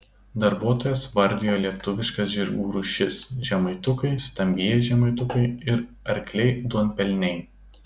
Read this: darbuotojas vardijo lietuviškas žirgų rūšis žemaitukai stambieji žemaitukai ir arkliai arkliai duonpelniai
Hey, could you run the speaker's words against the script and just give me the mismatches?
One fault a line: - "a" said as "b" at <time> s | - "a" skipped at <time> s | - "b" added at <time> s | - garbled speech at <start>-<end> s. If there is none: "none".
- "arkliai" skipped at 6.5 s